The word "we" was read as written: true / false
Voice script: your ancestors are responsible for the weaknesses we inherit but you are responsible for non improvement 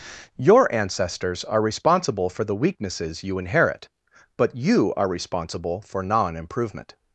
false